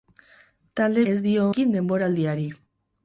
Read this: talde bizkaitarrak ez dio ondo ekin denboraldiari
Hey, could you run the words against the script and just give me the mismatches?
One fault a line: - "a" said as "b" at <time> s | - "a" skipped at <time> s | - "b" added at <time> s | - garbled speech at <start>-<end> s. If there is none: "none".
- "bizkaitarrak" skipped at 1.0 s
- "ondo" skipped at 1.4 s